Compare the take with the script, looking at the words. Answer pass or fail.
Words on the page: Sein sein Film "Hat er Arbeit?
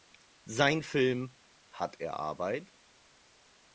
fail